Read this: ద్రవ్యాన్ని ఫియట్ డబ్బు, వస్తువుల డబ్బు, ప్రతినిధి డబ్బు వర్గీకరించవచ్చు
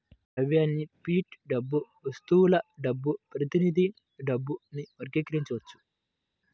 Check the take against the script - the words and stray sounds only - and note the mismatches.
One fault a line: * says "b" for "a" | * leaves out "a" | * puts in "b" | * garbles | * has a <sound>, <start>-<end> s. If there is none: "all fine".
all fine